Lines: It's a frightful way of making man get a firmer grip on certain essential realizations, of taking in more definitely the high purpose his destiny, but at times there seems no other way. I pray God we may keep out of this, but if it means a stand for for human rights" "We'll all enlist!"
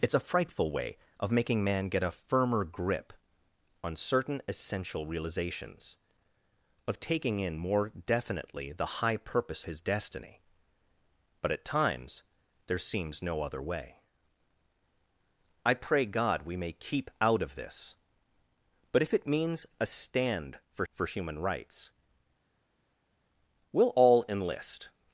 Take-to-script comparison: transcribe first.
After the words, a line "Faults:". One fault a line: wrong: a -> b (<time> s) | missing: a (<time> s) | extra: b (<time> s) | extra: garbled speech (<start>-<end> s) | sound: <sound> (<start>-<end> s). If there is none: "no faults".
It's a frightful way of making man get a firmer grip on certain essential realizations, of taking in more definitely the high purpose his destiny, but at times there seems no other way. I pray God we may keep out of this, but if it means a stand for for human rights" "We'll all enlist!"
Faults:
no faults